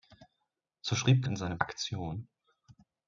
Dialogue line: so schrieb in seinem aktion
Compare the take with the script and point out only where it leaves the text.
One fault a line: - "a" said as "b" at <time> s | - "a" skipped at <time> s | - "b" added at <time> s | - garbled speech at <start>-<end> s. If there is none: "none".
none